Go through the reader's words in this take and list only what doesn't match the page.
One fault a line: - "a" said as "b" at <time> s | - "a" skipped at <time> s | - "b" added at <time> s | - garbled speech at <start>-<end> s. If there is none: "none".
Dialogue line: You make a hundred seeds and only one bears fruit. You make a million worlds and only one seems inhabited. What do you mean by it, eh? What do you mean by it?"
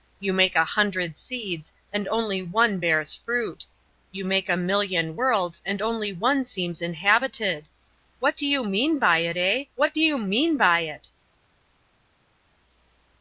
none